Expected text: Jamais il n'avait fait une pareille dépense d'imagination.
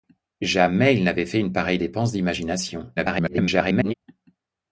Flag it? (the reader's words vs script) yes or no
yes